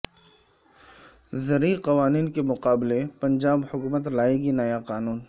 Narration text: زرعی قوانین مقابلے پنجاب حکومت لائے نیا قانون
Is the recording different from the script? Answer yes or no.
yes